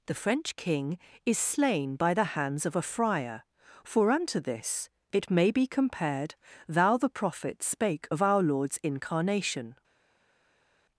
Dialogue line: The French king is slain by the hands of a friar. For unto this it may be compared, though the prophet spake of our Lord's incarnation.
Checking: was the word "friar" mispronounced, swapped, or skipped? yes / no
no